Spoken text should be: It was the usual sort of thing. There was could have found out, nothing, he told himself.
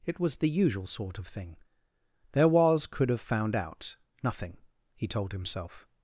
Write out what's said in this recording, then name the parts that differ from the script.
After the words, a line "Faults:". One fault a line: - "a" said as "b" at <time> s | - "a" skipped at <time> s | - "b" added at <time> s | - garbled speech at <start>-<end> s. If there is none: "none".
It was the usual sort of thing. There was could have found out, nothing, he told himself.
Faults:
none